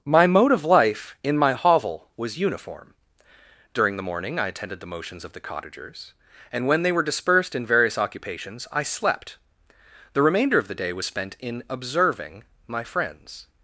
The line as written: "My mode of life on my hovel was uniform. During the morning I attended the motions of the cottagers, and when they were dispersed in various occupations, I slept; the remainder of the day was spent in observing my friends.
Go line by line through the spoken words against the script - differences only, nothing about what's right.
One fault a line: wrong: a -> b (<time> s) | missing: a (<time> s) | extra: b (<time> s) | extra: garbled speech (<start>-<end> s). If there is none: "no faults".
wrong: on -> in (1.2 s)